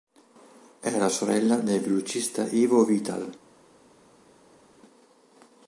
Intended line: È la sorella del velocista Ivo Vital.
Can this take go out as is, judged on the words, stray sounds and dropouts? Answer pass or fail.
pass